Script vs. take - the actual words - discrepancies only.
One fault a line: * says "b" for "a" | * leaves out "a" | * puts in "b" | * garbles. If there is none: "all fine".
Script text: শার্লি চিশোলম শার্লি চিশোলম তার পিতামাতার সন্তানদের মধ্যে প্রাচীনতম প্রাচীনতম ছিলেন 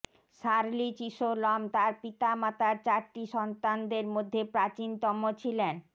* leaves out "শার্লি চিশোলম"
* puts in "চারটি"
* leaves out "প্রাচীনতম"